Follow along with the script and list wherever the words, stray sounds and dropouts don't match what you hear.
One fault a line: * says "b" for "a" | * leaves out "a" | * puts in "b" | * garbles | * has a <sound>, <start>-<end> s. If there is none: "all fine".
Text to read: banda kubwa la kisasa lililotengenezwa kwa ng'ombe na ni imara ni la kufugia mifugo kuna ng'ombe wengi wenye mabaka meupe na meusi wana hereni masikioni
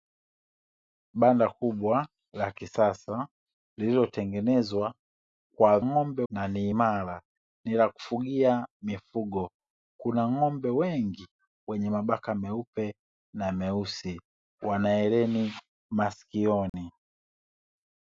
* has a dropout, 16.7-16.7 s